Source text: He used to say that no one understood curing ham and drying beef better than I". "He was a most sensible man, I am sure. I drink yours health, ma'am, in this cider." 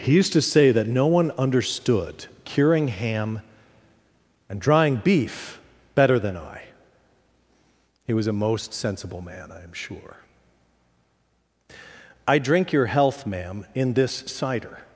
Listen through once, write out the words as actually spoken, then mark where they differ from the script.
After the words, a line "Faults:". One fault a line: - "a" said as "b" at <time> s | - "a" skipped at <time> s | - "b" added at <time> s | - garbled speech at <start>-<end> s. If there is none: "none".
He used to say that no one understood curing ham and drying beef better than I". "He was a most sensible man, I am sure. I drink your health, ma'am, in this cider."
Faults:
- "yours" said as "your" at 12.7 s